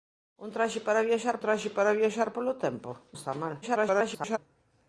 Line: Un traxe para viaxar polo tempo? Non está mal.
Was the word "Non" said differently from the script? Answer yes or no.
yes